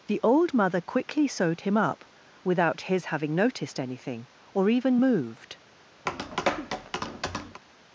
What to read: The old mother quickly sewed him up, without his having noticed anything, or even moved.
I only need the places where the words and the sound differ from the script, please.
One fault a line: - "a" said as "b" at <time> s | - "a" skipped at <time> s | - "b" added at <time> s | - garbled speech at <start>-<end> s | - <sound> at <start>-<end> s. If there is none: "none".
- tap at 6.1-7.6 s